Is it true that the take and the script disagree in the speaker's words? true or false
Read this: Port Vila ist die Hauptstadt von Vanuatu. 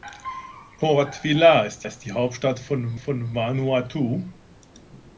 true